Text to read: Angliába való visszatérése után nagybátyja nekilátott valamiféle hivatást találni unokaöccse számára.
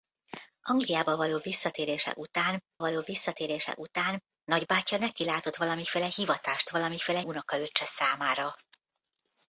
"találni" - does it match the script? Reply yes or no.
no